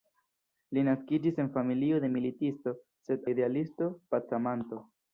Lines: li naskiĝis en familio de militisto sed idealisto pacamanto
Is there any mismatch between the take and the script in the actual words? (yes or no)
no